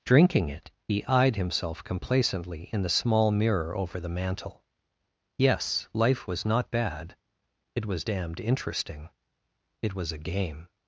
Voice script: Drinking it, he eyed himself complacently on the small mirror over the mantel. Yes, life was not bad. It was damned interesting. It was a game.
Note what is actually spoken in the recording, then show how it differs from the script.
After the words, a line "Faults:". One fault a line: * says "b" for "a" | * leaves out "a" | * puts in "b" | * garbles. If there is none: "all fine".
Drinking it, he eyed himself complacently in the small mirror over the mantel. Yes, life was not bad. It was damned interesting. It was a game.
Faults:
* says "in" for "on"